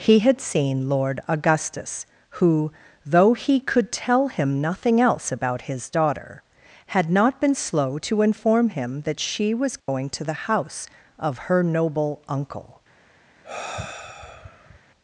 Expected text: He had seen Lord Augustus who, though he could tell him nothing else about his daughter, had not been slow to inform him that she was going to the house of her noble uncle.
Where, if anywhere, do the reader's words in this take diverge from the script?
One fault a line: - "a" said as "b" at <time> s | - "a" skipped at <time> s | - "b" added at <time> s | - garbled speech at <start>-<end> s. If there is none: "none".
none